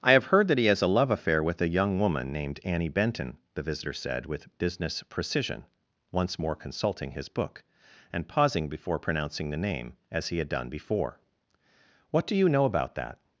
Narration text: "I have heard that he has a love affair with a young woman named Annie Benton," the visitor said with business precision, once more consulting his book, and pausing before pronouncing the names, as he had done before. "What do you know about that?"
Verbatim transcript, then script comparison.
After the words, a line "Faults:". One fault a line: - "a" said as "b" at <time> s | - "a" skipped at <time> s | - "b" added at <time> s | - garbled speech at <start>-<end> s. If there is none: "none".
"I have heard that he has a love affair with a young woman named Annie Benton," the visitor said with business precision, once more consulting his book, and pausing before pronouncing the name, as he had done before. "What do you know about that?"
Faults:
- "names" said as "name" at 9.6 s